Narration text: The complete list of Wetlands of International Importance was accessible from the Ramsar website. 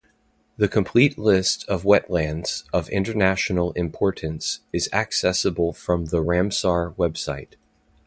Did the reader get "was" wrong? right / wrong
wrong